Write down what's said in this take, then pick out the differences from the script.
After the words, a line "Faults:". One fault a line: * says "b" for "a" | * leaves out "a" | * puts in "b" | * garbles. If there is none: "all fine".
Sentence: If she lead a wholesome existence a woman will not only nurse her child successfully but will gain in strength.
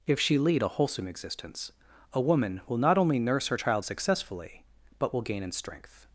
If she lead a wholesome existence a woman will not only nurse her child successfully but will gain in strength.
Faults:
all fine